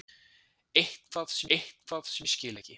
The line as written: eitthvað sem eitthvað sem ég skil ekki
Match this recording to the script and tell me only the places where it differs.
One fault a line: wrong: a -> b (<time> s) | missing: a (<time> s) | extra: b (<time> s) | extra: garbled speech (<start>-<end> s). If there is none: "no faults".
no faults